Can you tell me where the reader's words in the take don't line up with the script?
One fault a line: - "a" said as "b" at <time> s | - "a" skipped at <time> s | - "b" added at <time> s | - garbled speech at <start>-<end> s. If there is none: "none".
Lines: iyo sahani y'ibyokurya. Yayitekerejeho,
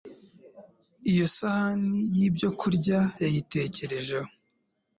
none